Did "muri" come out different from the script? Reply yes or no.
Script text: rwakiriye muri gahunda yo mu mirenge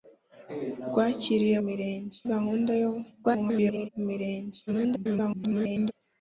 yes